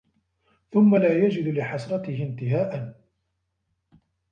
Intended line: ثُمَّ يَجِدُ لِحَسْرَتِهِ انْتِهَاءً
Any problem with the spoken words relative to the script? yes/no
yes